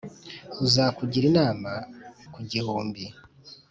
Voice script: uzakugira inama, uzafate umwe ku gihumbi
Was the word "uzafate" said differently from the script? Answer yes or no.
yes